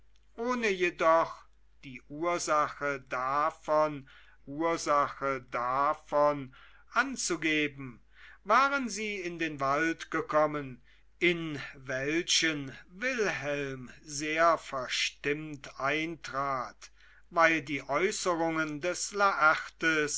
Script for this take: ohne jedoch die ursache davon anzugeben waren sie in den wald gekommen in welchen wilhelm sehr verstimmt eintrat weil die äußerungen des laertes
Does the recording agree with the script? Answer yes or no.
no